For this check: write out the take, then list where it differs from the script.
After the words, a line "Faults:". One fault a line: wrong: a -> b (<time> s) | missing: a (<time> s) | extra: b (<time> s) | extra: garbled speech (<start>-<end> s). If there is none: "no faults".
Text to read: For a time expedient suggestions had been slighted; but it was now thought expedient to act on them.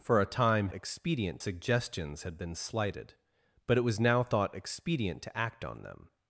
For a time expedient suggestions had been slighted; but it was now thought expedient to act on them.
Faults:
no faults